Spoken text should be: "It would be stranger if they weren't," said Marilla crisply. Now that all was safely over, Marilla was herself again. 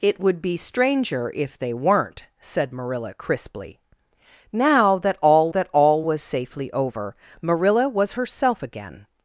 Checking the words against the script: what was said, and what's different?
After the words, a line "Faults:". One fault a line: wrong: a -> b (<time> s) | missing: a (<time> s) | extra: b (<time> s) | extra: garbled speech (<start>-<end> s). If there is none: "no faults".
"It would be stranger if they weren't," said Marilla crisply. Now that all that all was safely over, Marilla was herself again.
Faults:
extra: that all (5.5 s)